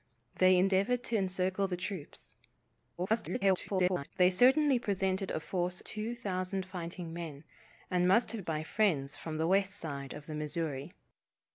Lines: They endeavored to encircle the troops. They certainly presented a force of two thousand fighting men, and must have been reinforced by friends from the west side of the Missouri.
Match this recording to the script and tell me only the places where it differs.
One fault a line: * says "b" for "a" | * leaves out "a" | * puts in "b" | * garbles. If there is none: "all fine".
* garbles
* leaves out "of"
* leaves out "been reinforced"